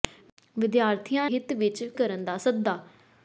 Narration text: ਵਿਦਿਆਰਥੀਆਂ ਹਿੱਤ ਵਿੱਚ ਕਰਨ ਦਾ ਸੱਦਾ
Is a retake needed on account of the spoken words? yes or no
no